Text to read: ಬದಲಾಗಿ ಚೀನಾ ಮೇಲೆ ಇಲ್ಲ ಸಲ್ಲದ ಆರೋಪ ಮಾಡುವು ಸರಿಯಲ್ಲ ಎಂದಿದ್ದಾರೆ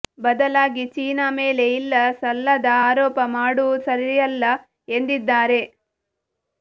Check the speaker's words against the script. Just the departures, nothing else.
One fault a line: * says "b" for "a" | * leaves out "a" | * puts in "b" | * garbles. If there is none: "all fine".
all fine